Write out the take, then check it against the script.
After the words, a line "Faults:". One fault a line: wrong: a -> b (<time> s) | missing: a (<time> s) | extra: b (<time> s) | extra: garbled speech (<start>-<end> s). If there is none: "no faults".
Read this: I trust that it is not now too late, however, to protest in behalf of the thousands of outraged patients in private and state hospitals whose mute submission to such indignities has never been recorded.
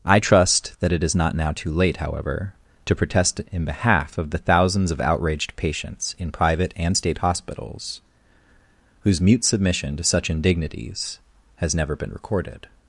I trust that it is not now too late, however, to protest in behalf of the thousands of outraged patients in private and state hospitals whose mute submission to such indignities has never been recorded.
Faults:
no faults